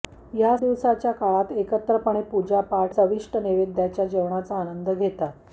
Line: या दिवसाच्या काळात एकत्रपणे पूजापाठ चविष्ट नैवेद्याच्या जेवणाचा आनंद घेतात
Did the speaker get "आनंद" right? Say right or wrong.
right